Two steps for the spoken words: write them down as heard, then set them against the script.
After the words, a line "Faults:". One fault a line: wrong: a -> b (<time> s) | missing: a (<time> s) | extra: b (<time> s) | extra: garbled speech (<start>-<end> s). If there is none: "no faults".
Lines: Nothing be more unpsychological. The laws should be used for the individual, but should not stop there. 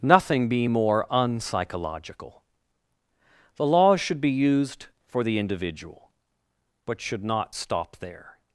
Nothing be more unpsychological. The laws should be used for the individual, but should not stop there.
Faults:
no faults